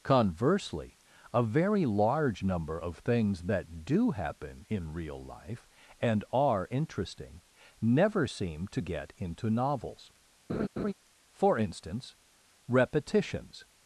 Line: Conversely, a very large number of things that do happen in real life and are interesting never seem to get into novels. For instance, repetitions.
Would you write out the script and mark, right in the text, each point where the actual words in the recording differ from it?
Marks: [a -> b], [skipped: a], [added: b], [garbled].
Conversely, a very large number of things that do happen in real life and are interesting never seem to get into novels. For instance, repetitions.